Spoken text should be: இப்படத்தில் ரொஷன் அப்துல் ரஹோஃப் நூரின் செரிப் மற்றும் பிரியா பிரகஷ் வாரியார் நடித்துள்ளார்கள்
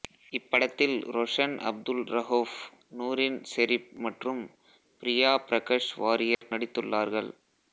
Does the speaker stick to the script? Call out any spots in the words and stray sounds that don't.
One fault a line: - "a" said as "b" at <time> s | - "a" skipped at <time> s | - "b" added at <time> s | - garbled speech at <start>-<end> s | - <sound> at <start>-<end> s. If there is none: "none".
- dropout at 6.3-6.4 s